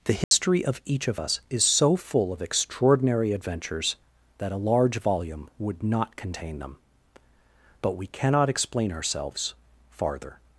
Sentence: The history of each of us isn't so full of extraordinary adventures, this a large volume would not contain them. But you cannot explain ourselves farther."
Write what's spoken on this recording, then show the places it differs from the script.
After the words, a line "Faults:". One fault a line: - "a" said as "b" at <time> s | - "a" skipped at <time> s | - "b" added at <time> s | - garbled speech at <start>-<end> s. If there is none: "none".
The history of each of us is so full of extraordinary adventures, that a large volume would not contain them. But we cannot explain ourselves farther."
Faults:
- "isn't" said as "is" at 1.5 s
- "this" said as "that" at 4.4 s
- "you" said as "we" at 7.9 s